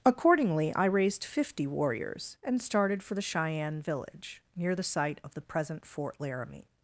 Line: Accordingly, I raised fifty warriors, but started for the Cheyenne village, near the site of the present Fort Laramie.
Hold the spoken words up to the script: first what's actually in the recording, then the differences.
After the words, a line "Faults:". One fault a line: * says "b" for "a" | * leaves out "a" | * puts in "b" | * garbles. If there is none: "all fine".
Accordingly, I raised fifty warriors, and started for the Cheyenne village, near the site of the present Fort Laramie.
Faults:
* says "and" for "but"